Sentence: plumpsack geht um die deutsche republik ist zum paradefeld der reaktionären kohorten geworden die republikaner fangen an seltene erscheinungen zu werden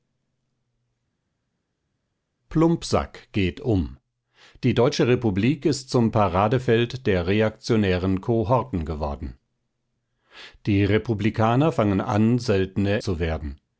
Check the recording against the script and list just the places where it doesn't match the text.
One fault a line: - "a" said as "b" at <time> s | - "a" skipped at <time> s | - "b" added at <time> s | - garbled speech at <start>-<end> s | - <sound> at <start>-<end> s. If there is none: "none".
- "erscheinungen" skipped at 13.0 s